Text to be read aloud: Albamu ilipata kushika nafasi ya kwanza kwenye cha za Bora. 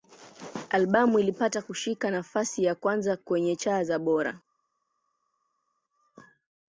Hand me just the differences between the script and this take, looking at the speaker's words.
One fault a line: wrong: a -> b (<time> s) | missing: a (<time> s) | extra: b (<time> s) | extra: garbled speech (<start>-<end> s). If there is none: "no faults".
no faults